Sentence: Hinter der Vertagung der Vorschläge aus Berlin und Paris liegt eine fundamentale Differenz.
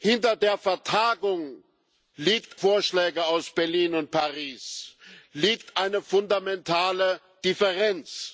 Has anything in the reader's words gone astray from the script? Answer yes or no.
yes